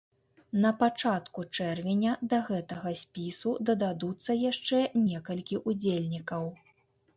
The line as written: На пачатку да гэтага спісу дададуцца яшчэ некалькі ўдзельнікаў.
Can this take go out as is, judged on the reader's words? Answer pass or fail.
fail